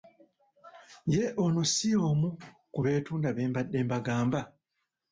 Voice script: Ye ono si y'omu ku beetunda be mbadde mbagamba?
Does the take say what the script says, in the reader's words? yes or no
yes